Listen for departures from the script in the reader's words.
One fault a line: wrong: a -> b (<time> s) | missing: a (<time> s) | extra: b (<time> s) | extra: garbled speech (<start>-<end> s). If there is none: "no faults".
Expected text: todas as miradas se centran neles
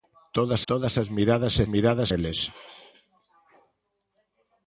extra: todas (0.7 s)
wrong: centran -> miradas (1.7 s)